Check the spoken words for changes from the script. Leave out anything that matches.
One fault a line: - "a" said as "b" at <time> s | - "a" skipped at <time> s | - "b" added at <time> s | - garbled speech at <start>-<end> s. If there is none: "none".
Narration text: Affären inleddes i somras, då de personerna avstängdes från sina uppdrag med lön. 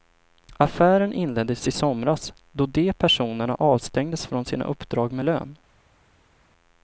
none